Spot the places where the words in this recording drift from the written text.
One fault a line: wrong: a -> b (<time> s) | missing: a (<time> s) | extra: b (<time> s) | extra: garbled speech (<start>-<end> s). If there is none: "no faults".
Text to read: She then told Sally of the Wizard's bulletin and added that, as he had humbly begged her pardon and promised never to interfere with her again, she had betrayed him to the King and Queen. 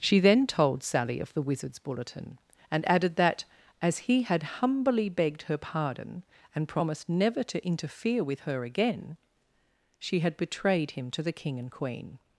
no faults